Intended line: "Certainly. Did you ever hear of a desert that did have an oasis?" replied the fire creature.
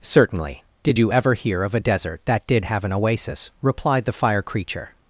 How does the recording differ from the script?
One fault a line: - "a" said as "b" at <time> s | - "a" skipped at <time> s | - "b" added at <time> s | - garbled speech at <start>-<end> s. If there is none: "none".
none